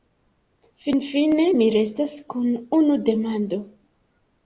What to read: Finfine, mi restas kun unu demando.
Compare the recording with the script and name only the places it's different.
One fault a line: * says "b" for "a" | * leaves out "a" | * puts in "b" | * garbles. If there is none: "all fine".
all fine